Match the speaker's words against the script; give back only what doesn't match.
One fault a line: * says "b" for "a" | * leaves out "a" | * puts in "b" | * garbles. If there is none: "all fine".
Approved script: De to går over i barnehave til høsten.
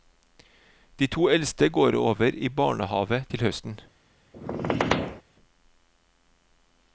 * puts in "eldste"